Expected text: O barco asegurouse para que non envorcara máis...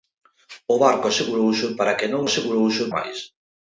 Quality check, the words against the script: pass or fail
fail